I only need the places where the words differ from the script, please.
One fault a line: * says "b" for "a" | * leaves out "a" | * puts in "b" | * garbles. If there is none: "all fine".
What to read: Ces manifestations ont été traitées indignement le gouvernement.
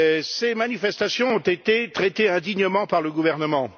* puts in "par"